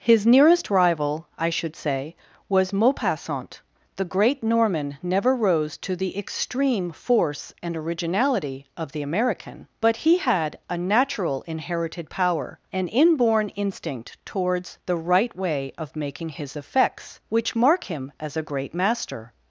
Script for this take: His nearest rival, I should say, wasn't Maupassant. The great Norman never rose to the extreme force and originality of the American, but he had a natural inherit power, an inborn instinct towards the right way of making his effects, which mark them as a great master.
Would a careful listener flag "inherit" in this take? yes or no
yes